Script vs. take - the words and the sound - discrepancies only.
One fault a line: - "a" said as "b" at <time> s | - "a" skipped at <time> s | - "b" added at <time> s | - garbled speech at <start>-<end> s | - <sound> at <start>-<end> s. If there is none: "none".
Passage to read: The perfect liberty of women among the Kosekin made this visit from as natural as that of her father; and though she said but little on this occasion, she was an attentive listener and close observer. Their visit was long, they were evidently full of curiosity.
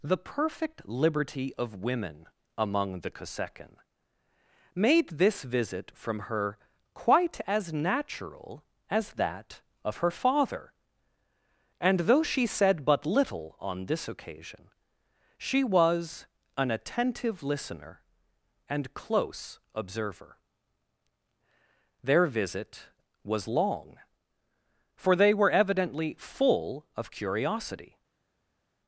- "her quite" added at 6.2 s
- "for" added at 25.0 s